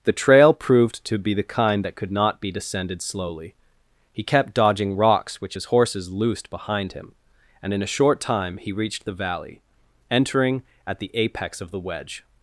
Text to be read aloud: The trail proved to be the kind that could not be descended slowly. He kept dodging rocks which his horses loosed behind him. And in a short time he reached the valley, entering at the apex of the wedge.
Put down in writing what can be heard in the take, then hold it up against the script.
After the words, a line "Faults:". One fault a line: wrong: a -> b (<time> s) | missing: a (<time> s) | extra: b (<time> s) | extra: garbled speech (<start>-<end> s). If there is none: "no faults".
The trail proved to be the kind that could not be descended slowly. He kept dodging rocks which his horses loosed behind him. And in a short time he reached the valley, entering at the apex of the wedge.
Faults:
no faults